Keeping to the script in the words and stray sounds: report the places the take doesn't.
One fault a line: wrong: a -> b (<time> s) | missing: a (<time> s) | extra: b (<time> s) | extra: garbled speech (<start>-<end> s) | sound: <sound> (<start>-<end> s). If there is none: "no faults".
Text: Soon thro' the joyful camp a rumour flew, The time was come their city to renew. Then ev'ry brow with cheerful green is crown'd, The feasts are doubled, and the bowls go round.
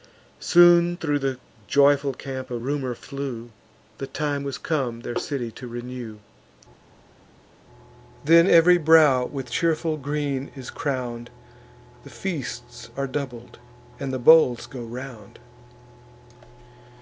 no faults